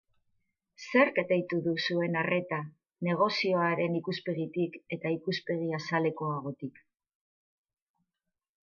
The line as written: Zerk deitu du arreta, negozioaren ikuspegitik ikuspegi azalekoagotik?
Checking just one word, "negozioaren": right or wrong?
right